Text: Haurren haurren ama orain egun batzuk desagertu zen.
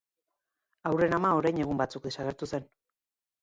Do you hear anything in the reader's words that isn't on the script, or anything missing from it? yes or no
yes